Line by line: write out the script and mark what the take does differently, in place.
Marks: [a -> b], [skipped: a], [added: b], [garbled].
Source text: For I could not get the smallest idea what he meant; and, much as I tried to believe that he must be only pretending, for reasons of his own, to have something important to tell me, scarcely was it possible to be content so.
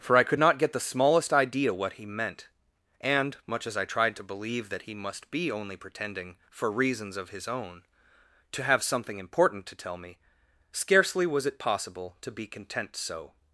For I could not get the smallest idea what he meant; and, much as I tried to believe that he must be only pretending, for reasons of his own, to have something important to tell me, scarcely was it possible to be content so.